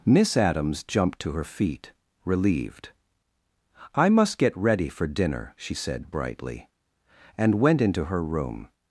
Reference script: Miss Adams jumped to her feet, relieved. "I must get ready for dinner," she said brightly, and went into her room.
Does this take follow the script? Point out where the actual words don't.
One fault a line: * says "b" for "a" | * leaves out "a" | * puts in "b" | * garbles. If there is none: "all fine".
all fine